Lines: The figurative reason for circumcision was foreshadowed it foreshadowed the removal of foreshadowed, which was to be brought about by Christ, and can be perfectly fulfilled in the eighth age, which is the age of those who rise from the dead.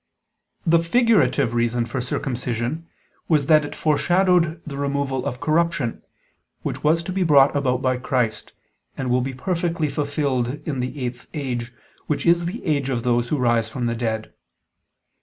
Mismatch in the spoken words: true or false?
true